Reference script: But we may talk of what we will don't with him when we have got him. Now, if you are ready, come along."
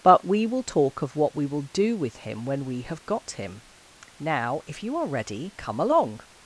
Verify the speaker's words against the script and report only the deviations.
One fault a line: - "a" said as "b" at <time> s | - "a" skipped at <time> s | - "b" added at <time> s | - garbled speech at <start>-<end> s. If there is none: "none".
- "may" said as "will" at 0.5 s
- "don't" said as "do" at 1.7 s